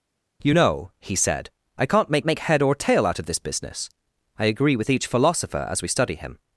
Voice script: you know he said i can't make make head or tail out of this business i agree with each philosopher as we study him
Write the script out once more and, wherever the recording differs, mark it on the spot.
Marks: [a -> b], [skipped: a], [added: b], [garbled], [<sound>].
you know he said i can't make make head or tail out of this business i agree with each philosopher as we study him